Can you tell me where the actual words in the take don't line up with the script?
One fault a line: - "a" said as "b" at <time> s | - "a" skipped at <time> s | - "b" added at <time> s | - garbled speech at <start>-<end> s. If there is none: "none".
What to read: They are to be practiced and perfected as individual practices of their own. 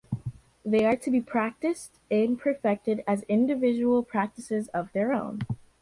none